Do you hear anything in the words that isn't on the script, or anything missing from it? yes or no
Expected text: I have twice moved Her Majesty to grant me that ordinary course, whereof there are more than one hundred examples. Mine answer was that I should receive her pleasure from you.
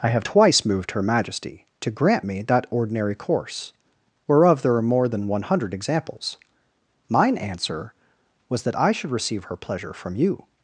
no